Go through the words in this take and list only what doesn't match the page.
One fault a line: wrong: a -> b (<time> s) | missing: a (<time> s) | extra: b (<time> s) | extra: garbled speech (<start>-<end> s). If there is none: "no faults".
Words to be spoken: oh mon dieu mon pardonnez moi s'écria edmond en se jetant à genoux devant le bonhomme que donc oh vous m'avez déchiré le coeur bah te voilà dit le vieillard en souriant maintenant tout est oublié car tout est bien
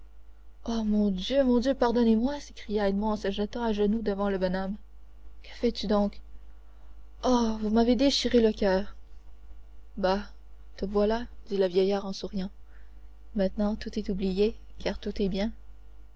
extra: dieu (1.6 s)
extra: fais tu (5.5 s)